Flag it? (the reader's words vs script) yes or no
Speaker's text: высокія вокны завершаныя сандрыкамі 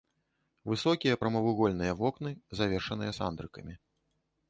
yes